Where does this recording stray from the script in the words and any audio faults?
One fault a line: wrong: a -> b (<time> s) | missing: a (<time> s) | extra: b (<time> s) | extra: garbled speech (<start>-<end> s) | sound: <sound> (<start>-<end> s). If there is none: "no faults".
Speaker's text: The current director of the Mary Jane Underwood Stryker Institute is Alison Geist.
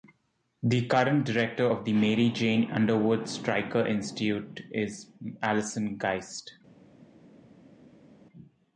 no faults